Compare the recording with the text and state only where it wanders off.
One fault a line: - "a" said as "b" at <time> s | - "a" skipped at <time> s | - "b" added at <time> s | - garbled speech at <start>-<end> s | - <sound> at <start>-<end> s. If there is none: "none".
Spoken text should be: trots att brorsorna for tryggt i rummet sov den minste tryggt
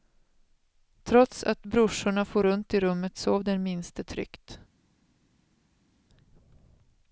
- "tryggt" said as "runt" at 2.4 s